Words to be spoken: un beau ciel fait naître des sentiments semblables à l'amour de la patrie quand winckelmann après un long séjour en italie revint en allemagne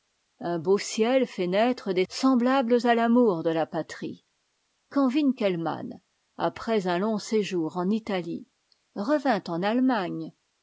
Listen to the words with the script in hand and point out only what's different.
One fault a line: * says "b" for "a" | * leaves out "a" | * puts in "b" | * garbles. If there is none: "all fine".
* leaves out "sentiments"